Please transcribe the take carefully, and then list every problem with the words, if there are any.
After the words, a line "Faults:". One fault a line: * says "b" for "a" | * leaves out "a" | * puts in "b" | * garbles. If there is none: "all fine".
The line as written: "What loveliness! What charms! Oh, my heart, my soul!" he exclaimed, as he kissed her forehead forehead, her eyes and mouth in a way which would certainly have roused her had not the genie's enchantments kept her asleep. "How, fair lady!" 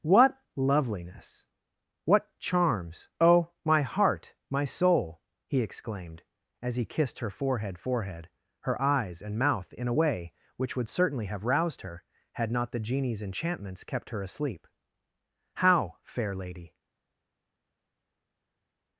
"What loveliness! What charms! Oh, my heart, my soul!" he exclaimed, as he kissed her forehead forehead, her eyes and mouth in a way which would certainly have roused her had not the genie's enchantments kept her asleep. "How, fair lady!"
Faults:
all fine